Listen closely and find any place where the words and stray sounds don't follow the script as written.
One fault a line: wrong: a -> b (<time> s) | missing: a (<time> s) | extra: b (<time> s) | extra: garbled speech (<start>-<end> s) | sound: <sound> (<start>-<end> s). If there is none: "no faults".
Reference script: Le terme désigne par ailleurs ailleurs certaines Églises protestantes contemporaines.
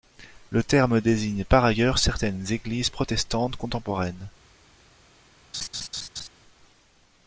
missing: ailleurs (2.0 s)
sound: laugh (5.5-6.3 s)